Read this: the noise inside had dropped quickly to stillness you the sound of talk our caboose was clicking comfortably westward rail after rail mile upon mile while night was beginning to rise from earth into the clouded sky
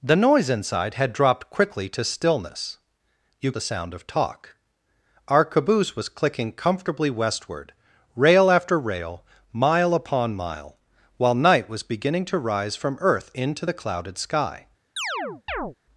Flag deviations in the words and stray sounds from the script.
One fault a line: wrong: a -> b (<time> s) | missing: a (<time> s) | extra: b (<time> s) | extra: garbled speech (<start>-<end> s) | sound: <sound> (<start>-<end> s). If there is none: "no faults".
sound: chirp (15.0-15.8 s)